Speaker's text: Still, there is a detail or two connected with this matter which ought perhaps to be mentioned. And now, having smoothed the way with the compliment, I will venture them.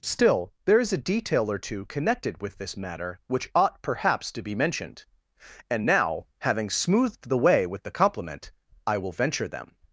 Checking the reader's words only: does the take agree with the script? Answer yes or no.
yes